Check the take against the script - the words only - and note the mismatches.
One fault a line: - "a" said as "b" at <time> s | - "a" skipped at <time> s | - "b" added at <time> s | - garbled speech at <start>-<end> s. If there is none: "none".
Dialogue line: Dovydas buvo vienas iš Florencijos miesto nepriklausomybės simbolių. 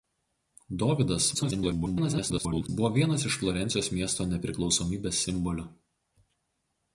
- garbled speech at 1.3-2.7 s